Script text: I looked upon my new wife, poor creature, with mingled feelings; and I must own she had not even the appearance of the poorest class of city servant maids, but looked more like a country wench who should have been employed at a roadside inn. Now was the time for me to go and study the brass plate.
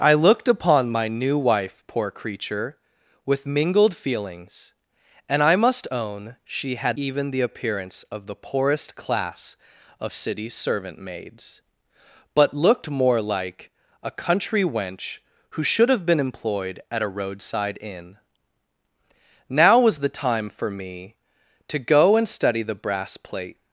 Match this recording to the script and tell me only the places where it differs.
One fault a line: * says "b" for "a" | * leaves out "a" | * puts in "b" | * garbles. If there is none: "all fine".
* leaves out "not"